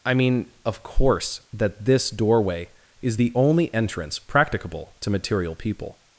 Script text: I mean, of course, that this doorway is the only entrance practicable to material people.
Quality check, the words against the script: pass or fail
pass